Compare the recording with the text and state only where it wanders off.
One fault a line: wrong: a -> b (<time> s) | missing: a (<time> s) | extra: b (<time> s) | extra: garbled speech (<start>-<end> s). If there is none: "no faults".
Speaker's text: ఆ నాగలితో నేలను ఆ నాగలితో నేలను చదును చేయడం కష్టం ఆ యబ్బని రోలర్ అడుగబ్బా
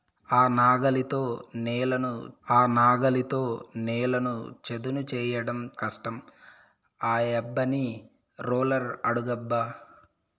no faults